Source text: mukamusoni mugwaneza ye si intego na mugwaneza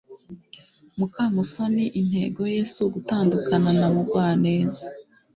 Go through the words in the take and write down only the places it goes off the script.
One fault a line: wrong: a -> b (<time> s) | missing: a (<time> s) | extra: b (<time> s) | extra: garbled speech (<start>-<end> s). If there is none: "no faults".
wrong: mugwaneza -> intego (2.0 s)
wrong: intego -> ugutandukana (2.9 s)